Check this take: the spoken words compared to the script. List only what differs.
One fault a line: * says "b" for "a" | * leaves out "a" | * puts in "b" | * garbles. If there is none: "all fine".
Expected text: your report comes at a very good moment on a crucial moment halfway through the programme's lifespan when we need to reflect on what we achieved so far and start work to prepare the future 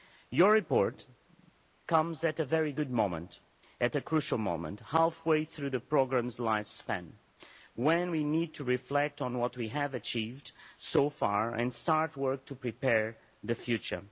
* says "at" for "on"
* puts in "have"